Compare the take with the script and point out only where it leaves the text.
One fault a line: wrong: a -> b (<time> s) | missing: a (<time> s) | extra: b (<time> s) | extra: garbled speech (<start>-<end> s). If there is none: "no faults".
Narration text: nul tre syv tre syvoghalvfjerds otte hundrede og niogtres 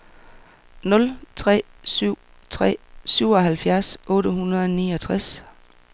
no faults